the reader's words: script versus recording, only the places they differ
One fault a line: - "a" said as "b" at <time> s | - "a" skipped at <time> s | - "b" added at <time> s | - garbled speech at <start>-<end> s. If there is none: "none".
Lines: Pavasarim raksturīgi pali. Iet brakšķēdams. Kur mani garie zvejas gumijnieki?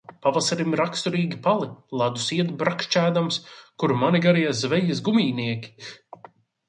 - "Ledus" added at 2.0 s